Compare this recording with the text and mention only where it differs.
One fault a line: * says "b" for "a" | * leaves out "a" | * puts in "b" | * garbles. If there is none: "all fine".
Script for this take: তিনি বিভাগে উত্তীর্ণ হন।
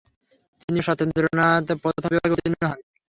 * puts in "ও সত্যেন্দ্রনাথ প্রথম"